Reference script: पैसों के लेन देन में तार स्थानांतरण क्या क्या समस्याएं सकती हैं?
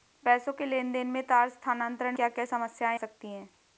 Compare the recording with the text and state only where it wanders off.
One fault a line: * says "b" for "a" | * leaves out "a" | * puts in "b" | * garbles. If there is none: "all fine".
all fine